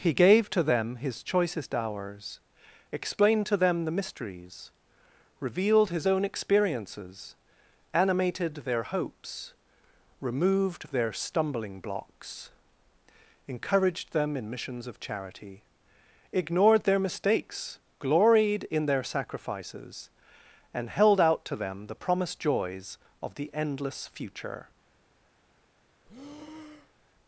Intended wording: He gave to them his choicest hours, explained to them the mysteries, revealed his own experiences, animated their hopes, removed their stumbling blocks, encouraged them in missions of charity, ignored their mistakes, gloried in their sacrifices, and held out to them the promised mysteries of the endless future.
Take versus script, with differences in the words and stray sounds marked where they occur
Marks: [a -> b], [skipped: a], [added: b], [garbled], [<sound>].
He gave to them his choicest hours, explained to them the mysteries, revealed his own experiences, animated their hopes, removed their stumbling blocks, encouraged them in missions of charity, ignored their mistakes, gloried in their sacrifices, and held out to them the promised [mysteries -> joys] of the endless future. [breath]